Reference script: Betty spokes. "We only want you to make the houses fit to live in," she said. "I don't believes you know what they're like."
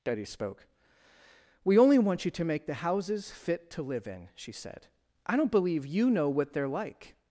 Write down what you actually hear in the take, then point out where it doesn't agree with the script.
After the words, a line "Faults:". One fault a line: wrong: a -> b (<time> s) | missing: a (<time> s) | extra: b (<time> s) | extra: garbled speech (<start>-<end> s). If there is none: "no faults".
Betty spoke. "We only want you to make the houses fit to live in," she said. "I don't believe you know what they're like."
Faults:
wrong: spokes -> spoke (0.2 s)
wrong: believes -> believe (5.5 s)